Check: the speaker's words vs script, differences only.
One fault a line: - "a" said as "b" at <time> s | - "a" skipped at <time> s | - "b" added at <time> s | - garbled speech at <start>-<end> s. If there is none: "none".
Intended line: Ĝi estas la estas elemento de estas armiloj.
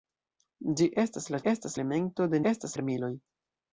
none